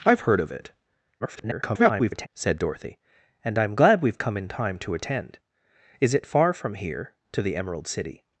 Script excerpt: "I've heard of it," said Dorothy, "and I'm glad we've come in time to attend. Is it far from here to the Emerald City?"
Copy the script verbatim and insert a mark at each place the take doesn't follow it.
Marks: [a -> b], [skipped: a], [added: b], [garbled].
"I've heard of it," [garbled] said Dorothy, "and I'm glad we've come in time to attend. Is it far from here to the Emerald City?"